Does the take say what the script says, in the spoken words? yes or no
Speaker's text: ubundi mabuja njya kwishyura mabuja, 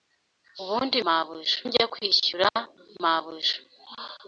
yes